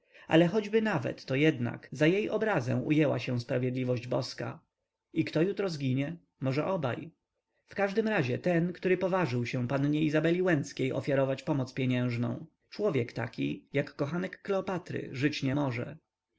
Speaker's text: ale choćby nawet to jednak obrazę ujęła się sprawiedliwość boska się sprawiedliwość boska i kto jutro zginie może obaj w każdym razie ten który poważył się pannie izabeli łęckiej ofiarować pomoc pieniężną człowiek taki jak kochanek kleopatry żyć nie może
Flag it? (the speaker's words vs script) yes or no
yes